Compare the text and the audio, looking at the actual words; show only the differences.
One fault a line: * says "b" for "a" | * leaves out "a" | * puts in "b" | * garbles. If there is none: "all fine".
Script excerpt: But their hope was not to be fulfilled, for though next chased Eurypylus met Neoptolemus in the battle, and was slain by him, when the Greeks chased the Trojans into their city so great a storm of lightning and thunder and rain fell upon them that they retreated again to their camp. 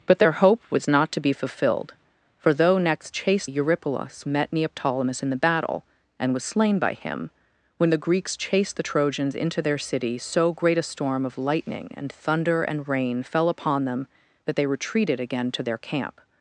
all fine